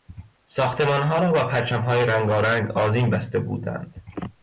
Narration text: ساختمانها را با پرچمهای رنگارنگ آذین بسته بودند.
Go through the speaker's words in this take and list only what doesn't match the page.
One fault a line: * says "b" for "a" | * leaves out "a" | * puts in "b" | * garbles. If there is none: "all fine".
all fine